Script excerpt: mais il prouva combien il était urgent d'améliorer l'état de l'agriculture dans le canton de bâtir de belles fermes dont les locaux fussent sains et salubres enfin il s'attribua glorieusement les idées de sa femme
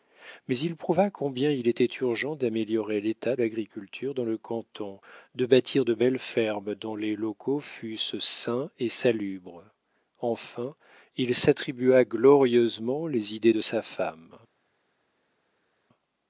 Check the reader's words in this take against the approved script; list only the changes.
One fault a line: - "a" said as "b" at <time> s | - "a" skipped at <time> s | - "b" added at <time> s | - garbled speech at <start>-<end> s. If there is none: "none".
- "de" skipped at 3.4 s